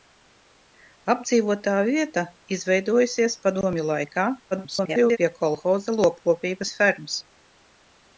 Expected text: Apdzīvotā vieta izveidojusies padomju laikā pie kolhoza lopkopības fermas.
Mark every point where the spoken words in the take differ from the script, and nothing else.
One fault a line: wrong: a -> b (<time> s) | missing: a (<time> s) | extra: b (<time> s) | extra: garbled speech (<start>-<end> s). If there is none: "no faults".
extra: garbled speech (4.5-5.2 s)